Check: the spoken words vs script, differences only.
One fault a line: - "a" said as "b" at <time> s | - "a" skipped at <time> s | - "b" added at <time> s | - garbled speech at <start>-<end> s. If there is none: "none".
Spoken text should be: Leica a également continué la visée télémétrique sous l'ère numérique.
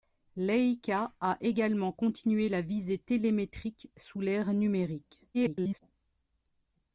- garbled speech at 5.3-5.8 s